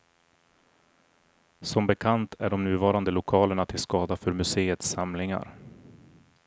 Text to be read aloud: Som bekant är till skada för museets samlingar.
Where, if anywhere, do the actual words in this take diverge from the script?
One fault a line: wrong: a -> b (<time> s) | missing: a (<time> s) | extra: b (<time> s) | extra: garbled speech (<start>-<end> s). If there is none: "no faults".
extra: de nuvarande lokalerna (2.5 s)